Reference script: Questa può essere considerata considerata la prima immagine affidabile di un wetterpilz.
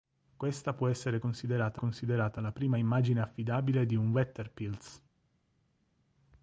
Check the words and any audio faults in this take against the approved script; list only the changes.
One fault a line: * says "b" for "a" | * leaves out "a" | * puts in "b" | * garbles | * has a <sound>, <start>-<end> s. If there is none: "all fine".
all fine